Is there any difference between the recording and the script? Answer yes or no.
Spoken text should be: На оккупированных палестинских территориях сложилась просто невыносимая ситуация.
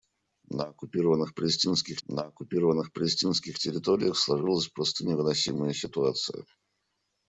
yes